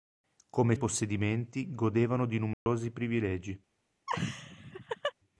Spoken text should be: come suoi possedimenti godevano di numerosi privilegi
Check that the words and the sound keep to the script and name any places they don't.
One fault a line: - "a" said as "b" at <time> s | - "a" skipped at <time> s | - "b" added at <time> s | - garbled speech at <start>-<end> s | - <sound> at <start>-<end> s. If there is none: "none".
- "suoi" skipped at 0.8 s
- dropout at 2.5-2.7 s
- laugh at 4.1-5.1 s